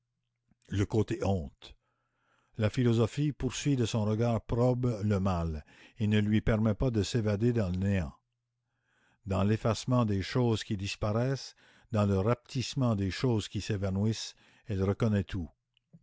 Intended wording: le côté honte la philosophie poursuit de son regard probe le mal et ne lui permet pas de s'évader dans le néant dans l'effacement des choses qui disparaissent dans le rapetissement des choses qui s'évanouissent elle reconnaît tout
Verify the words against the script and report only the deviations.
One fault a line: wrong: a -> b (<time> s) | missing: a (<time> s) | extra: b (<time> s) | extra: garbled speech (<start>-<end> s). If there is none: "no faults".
no faults